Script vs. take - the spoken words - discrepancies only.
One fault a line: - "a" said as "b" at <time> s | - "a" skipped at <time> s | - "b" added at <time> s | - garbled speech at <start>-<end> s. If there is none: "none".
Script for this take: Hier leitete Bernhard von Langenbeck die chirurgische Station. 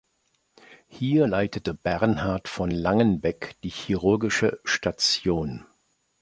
none